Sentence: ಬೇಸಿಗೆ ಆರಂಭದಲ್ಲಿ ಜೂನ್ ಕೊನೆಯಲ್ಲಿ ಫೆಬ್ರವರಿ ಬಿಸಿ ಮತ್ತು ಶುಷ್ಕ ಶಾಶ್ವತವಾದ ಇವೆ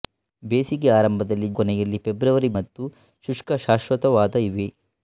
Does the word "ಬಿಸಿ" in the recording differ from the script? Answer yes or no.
yes